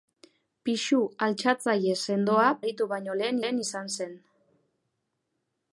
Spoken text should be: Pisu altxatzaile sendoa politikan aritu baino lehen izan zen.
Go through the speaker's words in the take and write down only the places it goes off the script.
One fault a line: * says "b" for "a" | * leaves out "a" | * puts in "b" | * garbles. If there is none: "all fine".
* leaves out "politikan"
* puts in "lehen"